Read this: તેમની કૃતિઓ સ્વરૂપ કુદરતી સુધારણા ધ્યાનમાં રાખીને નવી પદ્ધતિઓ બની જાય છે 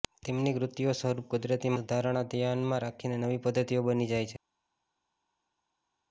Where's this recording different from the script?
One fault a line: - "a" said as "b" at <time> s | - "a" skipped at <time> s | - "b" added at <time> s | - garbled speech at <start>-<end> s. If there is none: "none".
none